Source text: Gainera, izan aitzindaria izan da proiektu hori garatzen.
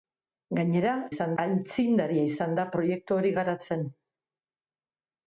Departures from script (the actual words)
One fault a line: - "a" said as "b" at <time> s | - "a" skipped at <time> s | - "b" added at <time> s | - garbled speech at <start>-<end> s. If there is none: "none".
none